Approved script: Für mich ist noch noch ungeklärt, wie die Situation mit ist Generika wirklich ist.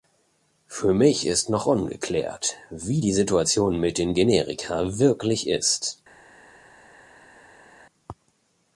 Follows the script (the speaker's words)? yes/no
no